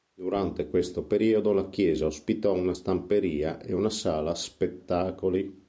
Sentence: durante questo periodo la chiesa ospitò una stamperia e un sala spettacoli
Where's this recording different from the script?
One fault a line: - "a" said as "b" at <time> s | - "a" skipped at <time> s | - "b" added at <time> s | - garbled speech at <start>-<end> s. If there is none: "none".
- "un" said as "una" at 3.7 s